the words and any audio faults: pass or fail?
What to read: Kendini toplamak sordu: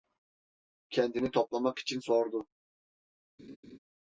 fail